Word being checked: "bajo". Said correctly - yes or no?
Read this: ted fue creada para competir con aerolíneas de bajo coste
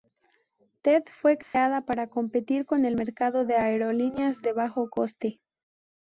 yes